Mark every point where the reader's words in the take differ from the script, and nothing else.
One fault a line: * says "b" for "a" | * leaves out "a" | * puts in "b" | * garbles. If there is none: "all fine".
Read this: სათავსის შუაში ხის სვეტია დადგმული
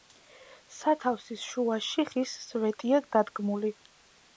all fine